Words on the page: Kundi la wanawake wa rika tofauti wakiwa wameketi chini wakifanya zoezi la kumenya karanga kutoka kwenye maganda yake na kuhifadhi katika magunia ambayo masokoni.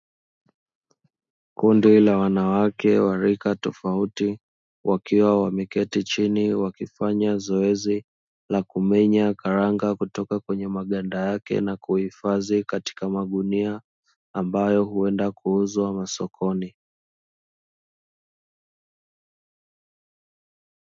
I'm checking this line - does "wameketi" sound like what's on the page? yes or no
yes